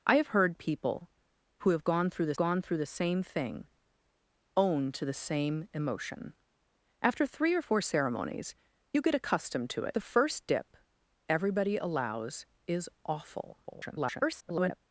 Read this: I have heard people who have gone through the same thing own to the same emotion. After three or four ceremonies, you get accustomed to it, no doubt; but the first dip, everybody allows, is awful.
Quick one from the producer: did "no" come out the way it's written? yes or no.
no